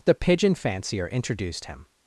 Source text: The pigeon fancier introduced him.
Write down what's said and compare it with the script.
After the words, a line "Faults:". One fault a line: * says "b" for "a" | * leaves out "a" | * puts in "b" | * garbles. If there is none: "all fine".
The pigeon fancier introduced him.
Faults:
all fine